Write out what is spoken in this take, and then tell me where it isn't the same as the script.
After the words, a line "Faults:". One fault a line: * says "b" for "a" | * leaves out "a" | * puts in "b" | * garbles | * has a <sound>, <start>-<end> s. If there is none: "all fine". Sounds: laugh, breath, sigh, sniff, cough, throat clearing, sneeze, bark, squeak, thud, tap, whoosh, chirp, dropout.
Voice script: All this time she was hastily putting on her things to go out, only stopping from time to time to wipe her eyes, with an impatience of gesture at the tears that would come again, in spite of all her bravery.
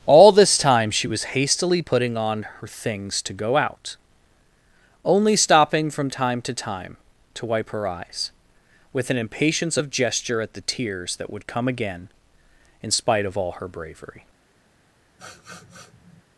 All this time she was hastily putting on her things to go out, only stopping from time to time to wipe her eyes, with an impatience of gesture at the tears that would come again, in spite of all her bravery.
Faults:
* has a sniff, 15.2-16.2 s